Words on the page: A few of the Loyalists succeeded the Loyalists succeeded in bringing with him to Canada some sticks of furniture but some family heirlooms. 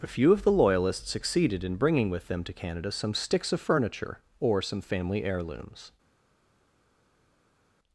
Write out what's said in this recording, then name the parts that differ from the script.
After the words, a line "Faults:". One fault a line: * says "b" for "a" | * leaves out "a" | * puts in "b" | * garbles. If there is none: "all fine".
A few of the Loyalists succeeded in bringing with them to Canada some sticks of furniture or some family heirlooms.
Faults:
* leaves out "the Loyalists succeeded"
* says "them" for "him"
* says "or" for "but"